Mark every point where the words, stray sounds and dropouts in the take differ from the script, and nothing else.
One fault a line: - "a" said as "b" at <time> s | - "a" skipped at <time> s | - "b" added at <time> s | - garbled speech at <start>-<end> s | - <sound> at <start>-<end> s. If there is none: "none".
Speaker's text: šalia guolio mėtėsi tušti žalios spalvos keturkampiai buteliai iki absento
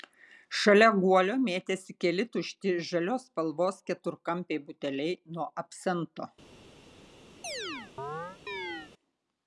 - "keli" added at 2.0 s
- "iki" said as "nuo" at 5.4 s
- chirp at 7.4-8.9 s